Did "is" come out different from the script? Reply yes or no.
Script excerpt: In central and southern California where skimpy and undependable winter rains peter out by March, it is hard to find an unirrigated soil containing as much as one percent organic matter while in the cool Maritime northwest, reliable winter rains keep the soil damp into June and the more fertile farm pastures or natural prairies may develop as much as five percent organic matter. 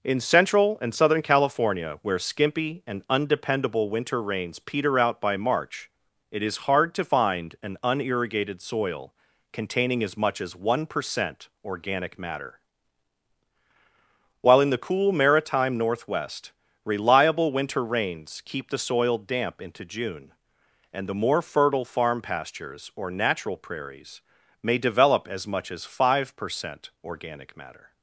no